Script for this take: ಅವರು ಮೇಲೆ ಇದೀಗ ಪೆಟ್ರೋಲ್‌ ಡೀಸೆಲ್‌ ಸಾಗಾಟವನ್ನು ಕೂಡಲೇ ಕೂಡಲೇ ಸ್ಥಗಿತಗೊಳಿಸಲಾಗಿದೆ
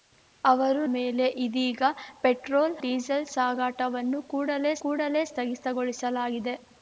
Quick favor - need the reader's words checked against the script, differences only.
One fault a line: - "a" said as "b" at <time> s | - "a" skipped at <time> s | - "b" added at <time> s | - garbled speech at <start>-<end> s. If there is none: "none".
none